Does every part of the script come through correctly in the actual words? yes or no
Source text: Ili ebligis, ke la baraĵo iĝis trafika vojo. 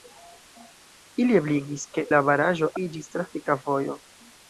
yes